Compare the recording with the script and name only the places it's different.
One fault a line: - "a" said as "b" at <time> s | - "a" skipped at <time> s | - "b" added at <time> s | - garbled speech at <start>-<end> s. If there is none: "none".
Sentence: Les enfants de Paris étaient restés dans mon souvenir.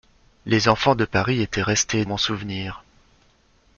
- "dans" skipped at 2.1 s